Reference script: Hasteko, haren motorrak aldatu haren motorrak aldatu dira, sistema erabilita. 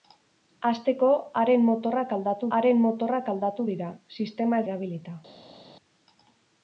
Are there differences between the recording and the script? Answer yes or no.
no